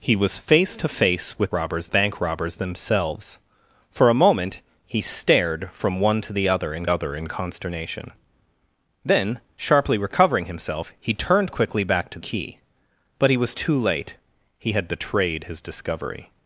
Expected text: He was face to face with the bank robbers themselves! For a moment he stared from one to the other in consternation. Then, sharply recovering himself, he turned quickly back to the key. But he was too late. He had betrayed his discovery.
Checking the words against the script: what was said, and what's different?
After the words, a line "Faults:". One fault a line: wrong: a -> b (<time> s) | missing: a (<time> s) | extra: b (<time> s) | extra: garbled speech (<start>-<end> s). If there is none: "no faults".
He was face to face with robbers bank robbers themselves! For a moment he stared from one to the other in other in consternation. Then, sharply recovering himself, he turned quickly back to key. But he was too late. He had betrayed his discovery.
Faults:
wrong: the -> robbers (1.5 s)
extra: other in (6.9 s)
missing: the (12.2 s)